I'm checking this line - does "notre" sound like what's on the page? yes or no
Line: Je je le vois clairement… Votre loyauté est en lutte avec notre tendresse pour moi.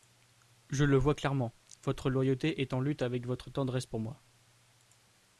no